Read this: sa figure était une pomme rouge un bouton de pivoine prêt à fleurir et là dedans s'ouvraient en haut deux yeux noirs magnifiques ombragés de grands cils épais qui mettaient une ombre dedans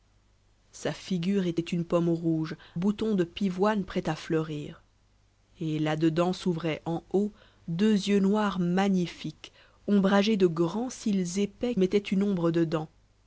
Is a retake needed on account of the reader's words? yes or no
yes